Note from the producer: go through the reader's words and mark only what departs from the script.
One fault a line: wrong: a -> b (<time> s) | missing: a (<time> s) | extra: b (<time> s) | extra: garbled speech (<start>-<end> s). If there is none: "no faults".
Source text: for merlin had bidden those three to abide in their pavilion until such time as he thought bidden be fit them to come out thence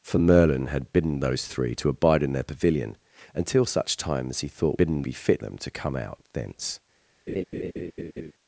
no faults